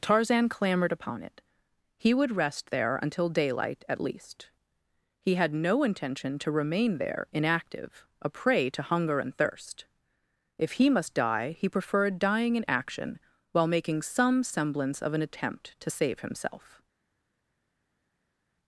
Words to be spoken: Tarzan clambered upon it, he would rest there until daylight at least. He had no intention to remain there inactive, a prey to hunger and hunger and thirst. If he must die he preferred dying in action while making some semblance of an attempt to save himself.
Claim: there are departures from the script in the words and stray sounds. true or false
true